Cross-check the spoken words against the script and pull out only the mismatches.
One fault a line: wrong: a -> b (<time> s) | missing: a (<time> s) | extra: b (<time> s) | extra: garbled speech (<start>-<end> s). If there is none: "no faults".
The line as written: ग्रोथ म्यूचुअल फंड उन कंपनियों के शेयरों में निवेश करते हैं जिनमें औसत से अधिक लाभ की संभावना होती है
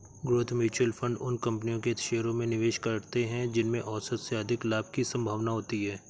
no faults